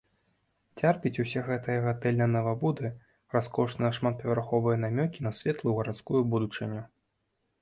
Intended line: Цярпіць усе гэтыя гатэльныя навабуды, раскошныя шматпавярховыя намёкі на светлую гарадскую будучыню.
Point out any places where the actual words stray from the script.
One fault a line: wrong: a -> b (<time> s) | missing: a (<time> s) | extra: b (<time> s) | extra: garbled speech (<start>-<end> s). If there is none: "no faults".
no faults